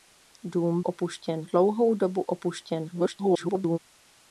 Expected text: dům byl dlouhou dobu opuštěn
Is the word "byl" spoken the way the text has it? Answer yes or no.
no